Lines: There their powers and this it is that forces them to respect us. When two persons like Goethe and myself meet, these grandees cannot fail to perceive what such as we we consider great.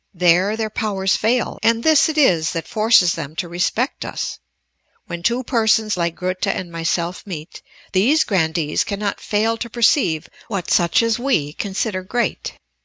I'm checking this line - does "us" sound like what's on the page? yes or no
yes